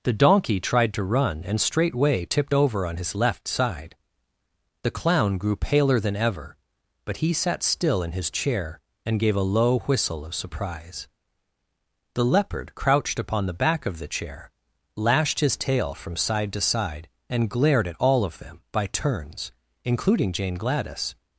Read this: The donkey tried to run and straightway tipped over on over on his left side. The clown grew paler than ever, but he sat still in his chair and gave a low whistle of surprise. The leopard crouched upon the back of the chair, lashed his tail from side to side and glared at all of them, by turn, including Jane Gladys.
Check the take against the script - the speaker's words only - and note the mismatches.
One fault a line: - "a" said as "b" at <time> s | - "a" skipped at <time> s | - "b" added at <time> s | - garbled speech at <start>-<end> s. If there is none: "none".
- "over on" skipped at 3.0 s
- "turn" said as "turns" at 18.9 s